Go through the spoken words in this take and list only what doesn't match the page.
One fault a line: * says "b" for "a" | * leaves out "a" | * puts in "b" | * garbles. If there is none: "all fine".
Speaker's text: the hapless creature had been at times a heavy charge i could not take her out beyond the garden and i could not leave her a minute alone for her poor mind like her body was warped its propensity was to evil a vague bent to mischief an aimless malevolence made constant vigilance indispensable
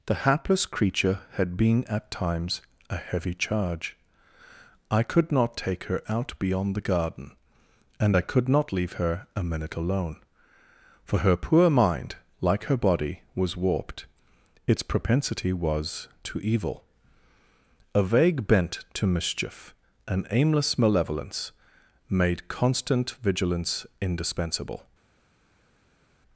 all fine